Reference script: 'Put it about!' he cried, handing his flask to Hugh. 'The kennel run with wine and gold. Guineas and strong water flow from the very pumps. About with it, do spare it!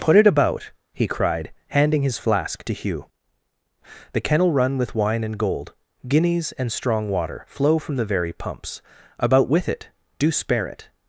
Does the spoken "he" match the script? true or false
true